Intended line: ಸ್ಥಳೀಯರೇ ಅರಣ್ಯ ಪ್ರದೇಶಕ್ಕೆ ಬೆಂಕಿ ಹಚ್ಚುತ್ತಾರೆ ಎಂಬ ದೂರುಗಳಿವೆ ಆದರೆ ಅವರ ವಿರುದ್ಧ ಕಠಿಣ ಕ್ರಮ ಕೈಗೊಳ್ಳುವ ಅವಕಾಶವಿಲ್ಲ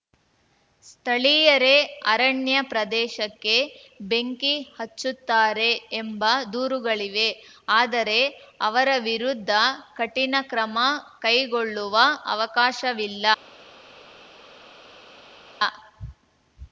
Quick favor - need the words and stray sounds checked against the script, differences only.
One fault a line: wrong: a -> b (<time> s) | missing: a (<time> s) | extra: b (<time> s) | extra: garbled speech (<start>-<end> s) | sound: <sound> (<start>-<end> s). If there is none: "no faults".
no faults